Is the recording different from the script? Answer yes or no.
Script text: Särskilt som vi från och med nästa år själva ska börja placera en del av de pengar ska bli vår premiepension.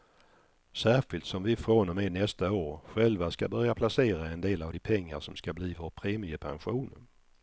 yes